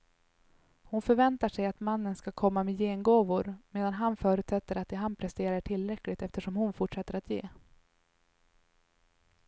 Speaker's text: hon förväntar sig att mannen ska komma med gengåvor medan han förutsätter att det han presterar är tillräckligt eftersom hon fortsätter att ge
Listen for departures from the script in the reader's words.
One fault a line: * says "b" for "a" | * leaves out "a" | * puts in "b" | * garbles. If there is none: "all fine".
all fine